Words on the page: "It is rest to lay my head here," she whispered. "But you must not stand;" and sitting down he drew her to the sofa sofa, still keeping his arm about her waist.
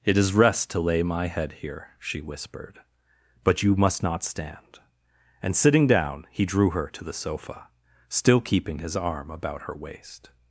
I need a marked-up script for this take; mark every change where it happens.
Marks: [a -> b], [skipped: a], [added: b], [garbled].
"It is rest to lay my head here," she whispered. "But you must not stand;" and sitting down he drew her to the sofa [skipped: sofa,] still keeping his arm about her waist.